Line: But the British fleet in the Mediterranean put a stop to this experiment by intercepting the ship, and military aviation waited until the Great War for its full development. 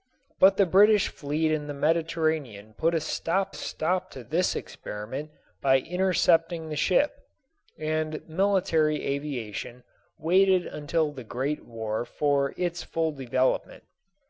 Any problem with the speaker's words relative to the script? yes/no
yes